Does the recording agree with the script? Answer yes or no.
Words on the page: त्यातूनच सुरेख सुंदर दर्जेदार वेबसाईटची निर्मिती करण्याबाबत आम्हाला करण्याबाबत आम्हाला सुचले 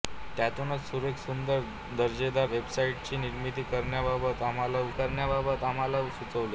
yes